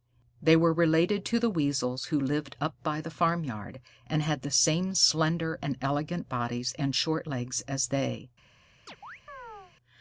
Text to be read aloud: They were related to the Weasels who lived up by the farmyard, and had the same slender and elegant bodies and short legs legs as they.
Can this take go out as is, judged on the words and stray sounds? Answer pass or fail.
fail